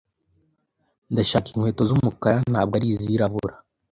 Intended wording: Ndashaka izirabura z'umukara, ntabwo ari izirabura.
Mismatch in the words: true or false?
true